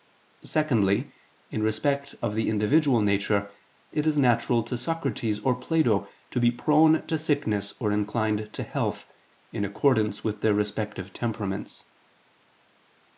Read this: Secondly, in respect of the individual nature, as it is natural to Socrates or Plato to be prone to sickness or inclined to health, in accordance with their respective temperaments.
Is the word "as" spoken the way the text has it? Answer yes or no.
no